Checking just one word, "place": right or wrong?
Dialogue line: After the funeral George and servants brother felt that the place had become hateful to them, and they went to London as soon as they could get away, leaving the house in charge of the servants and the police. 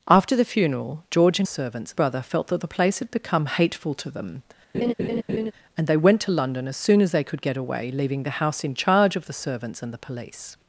right